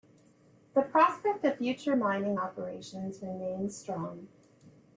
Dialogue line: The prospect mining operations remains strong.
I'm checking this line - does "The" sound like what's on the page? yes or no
yes